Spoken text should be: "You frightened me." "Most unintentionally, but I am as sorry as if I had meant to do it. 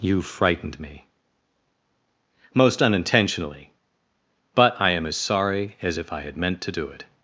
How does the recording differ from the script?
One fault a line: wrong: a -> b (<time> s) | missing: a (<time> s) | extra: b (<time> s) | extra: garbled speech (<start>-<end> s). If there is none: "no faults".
no faults